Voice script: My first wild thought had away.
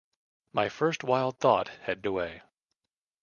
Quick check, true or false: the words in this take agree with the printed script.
true